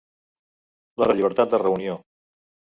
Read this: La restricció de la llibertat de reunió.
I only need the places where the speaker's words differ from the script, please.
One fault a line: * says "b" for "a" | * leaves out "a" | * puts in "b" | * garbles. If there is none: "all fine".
* leaves out "restricció de"